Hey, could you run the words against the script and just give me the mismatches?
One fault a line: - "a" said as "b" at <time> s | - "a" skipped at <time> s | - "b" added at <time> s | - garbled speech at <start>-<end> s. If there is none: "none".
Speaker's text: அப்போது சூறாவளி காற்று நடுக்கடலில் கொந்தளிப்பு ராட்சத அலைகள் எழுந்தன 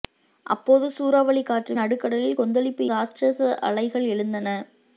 none